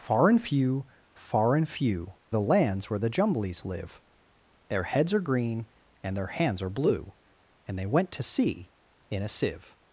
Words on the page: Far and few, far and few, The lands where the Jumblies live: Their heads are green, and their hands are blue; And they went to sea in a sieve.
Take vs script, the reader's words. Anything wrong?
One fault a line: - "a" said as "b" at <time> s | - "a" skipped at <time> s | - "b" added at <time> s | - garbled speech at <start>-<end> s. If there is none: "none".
none